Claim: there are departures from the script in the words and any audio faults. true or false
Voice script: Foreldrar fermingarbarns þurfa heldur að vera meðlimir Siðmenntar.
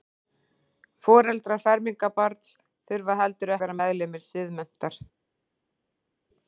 false